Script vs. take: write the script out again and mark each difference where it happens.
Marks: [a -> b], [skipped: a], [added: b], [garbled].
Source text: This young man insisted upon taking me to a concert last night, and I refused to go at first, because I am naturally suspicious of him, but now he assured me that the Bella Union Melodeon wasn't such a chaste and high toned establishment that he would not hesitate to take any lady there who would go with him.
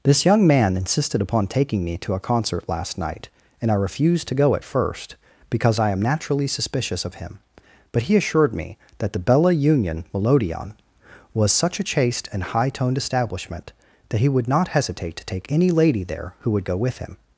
This young man insisted upon taking me to a concert last night, and I refused to go at first, because I am naturally suspicious of him, but [skipped: now] he assured me that the Bella Union Melodeon [wasn't -> was] such a chaste and high toned establishment that he would not hesitate to take any lady there who would go with him.